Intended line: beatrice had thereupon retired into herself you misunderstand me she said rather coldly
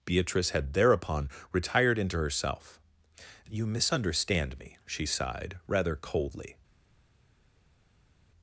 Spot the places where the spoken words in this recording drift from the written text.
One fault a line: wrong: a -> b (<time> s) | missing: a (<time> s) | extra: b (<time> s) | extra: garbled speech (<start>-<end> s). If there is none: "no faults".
wrong: said -> sighed (5.0 s)